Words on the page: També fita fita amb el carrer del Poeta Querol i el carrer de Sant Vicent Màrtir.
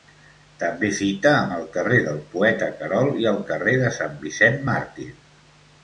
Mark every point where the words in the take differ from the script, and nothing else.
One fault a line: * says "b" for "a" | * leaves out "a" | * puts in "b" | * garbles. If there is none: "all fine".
* leaves out "fita"